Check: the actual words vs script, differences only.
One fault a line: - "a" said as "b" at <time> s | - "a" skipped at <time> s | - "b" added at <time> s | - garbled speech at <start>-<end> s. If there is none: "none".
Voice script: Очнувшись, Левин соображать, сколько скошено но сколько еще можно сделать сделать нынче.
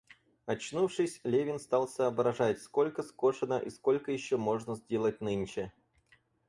- "стал" added at 1.6 s
- "но" said as "и" at 3.6 s
- "сделать" skipped at 5.2 s